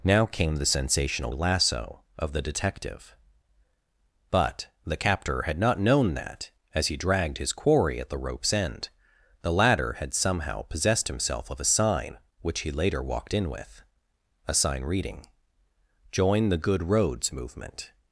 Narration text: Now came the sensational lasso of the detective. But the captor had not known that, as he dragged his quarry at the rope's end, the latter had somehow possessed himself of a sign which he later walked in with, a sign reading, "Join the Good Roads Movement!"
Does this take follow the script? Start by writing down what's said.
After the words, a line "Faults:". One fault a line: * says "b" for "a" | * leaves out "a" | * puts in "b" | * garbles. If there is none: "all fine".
Now came the sensational lasso of the detective. But the captor had not known that, as he dragged his quarry at the rope's end, the latter had somehow possessed himself of a sign which he later walked in with, a sign reading, "Join the Good Roads Movement!"
Faults:
all fine